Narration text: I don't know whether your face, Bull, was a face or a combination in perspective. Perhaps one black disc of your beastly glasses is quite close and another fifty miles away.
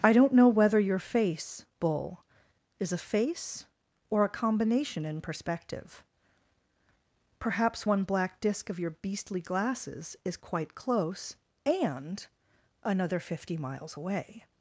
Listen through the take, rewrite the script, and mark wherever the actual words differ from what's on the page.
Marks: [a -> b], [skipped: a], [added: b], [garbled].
I don't know whether your face, Bull, [was -> is] a face or a combination in perspective. Perhaps one black disc of your beastly glasses is quite close and another fifty miles away.